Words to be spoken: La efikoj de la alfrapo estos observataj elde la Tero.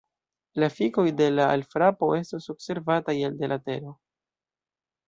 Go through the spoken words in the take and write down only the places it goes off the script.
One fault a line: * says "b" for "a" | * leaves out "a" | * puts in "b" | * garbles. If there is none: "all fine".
all fine